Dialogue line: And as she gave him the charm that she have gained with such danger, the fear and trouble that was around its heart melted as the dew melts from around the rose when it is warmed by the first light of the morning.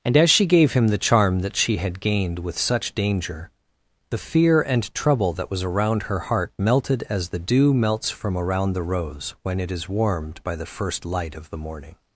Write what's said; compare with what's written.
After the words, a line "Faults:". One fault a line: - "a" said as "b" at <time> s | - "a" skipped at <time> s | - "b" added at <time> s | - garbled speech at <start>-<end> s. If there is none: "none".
And as she gave him the charm that she had gained with such danger, the fear and trouble that was around her heart melted as the dew melts from around the rose when it is warmed by the first light of the morning.
Faults:
- "have" said as "had" at 1.8 s
- "its" said as "her" at 6.0 s